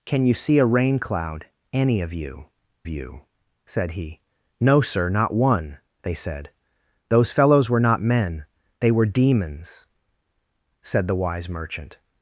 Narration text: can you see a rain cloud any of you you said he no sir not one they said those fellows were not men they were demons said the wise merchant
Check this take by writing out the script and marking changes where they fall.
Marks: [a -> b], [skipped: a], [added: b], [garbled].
can you see a rain cloud any of you you said he no sir not one they said those fellows were not men they were demons said the wise merchant